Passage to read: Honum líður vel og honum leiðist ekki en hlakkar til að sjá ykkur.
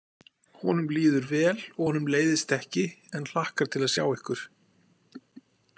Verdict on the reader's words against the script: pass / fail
pass